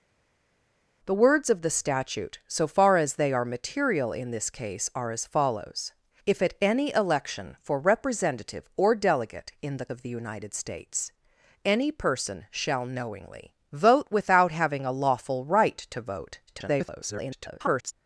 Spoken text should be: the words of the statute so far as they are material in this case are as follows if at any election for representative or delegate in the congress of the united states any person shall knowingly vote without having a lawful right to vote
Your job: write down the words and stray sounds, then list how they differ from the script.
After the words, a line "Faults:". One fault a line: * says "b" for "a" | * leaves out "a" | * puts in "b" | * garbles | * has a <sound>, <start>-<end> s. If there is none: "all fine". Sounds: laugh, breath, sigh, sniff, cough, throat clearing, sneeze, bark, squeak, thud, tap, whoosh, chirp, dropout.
the words of the statute so far as they are material in this case are as follows if at any election for representative or delegate in the of the united states any person shall knowingly vote without having a lawful right to vote [garbled]
Faults:
* leaves out "congress"
* garbles